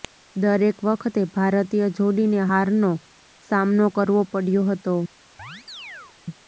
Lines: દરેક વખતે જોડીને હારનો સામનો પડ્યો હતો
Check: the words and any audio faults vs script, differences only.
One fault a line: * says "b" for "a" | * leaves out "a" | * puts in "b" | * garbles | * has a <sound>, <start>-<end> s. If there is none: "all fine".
* puts in "ભારતીય"
* puts in "કરવો"
* has a chirp, 5.4-6.2 s